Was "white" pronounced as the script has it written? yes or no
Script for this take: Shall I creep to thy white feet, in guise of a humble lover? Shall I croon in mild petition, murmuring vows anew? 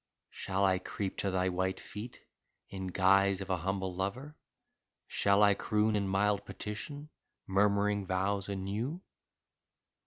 yes